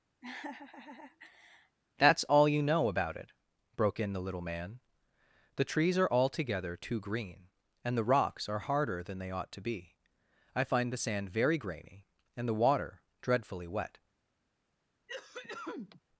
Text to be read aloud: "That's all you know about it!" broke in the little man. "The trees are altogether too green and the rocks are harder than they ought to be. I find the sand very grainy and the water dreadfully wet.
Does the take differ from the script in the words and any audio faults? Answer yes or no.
yes